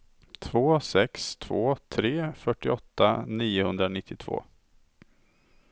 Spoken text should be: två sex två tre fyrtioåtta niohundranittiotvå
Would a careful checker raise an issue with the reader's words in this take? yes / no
no